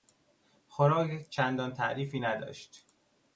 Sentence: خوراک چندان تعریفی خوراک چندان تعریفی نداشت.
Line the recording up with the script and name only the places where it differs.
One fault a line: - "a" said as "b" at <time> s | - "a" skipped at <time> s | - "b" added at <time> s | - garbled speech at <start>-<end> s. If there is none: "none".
- "خوراک چندان تعریفی" skipped at 2.2 s